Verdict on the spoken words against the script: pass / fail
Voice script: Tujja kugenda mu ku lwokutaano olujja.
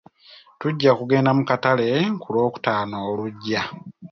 fail